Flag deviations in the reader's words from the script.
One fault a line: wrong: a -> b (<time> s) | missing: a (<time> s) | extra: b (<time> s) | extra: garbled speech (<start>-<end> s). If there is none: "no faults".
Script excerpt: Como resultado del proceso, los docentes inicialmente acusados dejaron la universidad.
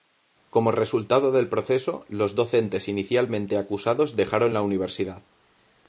no faults